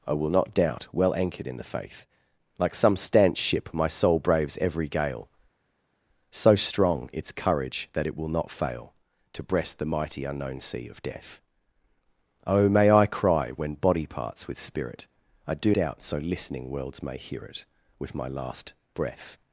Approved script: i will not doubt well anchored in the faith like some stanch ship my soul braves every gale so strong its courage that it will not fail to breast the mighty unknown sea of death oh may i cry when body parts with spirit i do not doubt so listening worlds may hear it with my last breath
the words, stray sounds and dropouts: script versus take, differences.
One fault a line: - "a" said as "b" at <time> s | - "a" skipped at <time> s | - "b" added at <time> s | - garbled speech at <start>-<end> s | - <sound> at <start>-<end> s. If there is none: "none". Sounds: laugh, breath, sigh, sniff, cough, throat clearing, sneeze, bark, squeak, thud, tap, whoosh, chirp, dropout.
- "not" skipped at 15.7 s